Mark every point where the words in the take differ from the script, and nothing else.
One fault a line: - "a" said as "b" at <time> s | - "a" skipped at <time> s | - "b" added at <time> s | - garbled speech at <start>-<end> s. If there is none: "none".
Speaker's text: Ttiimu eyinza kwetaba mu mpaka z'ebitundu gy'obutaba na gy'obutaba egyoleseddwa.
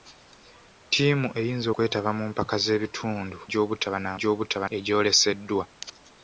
none